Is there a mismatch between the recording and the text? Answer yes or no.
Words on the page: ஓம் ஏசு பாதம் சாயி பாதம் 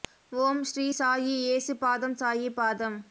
yes